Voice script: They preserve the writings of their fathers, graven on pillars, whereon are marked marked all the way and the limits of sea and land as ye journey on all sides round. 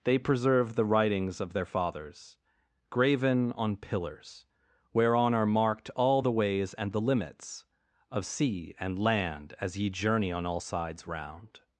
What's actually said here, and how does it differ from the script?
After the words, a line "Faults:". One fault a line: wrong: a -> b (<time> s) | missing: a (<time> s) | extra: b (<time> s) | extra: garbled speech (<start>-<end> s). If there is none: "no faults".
They preserve the writings of their fathers, graven on pillars, whereon are marked all the ways and the limits of sea and land as ye journey on all sides round.
Faults:
missing: marked (5.9 s)
wrong: way -> ways (6.3 s)